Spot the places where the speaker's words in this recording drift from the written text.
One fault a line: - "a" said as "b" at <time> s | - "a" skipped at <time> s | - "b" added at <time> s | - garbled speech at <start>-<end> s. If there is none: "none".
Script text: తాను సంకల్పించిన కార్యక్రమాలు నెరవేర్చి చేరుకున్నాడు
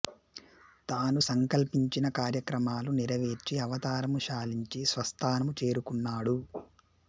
- "అవతారము చాలించి స్వస్థానము" added at 3.6 s